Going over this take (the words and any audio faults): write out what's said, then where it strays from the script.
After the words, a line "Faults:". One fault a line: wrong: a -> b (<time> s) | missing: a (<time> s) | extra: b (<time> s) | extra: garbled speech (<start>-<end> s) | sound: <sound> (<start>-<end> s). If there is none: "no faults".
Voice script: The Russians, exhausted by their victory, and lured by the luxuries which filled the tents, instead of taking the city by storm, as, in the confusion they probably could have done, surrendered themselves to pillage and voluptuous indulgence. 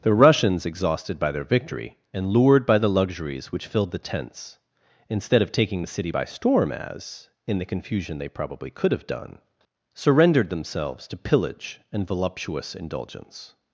The Russians, exhausted by their victory, and lured by the luxuries which filled the tents, instead of taking the city by storm, as, in the confusion they probably could have done, surrendered themselves to pillage and voluptuous indulgence.
Faults:
no faults